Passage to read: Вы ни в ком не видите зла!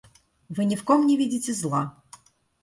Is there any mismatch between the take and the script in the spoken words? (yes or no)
no